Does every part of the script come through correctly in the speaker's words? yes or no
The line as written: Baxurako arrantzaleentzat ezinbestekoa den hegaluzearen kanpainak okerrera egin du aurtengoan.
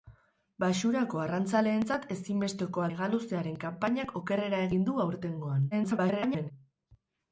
no